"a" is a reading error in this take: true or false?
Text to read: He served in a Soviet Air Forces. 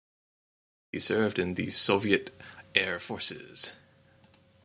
true